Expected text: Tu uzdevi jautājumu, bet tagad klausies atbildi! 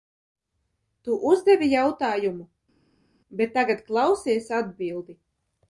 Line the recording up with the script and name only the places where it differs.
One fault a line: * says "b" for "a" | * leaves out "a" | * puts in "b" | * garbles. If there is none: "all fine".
all fine